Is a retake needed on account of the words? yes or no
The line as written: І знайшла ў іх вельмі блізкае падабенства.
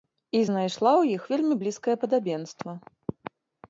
no